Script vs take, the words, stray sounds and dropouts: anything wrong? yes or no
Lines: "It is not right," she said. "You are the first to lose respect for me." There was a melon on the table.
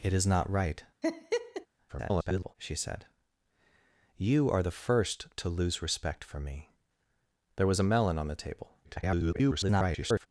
yes